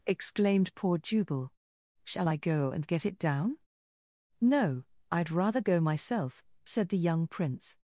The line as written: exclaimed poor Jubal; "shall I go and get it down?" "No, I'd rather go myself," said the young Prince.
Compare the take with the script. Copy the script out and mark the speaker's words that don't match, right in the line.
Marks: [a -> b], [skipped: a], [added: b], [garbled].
exclaimed poor Jubal; "shall I go and get it down?" "No, I'd rather go myself," said the young Prince.